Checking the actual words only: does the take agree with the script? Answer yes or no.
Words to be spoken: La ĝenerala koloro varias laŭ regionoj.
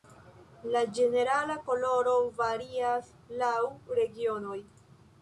yes